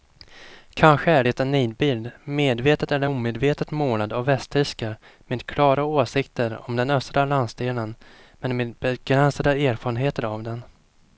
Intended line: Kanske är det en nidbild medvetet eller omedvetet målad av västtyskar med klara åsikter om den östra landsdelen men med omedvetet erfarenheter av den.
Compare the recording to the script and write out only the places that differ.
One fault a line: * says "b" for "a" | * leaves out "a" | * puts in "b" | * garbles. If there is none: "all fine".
* says "begränsade" for "omedvetet"